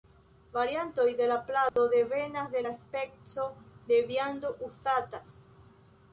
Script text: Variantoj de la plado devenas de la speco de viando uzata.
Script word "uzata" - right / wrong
right